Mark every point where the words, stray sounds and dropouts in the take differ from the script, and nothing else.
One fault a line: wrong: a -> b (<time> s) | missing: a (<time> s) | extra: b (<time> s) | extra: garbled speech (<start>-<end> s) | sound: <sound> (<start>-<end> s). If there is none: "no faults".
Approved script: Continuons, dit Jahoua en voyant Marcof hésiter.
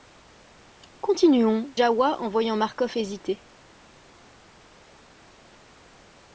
missing: dit (1.8 s)